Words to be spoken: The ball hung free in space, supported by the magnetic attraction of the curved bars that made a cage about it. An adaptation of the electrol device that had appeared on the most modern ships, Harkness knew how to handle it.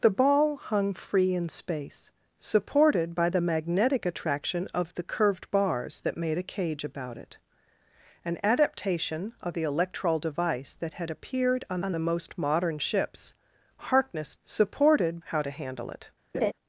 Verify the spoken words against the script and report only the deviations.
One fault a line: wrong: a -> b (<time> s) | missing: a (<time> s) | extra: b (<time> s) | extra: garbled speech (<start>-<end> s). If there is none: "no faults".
extra: on (11.8 s)
wrong: knew -> supported (14.4 s)